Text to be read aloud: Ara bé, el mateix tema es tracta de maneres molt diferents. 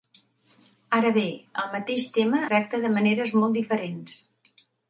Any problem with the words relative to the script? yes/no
yes